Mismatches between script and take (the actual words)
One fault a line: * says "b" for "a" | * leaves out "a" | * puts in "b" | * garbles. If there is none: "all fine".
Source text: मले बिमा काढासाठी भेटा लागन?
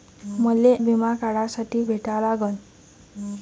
all fine